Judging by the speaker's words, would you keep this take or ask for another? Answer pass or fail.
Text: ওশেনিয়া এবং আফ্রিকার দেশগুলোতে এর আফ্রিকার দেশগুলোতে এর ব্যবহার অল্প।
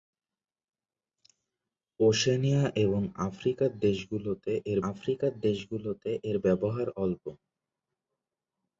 pass